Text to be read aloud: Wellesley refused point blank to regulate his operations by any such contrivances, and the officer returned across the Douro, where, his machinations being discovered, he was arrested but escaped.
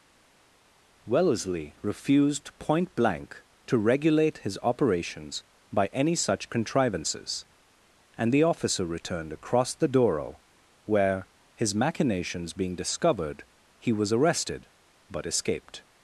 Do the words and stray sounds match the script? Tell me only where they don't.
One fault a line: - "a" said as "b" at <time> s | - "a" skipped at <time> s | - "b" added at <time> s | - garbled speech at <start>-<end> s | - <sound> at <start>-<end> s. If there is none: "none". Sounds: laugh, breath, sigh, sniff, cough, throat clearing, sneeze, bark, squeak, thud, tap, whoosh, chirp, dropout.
none